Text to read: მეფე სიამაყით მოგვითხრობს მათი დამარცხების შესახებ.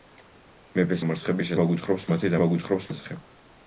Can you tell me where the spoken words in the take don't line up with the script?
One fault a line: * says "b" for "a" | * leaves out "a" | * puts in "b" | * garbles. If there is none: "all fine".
* says "დამარცხების" for "სიამაყით"
* says "მოგვითხრობს" for "დამარცხების"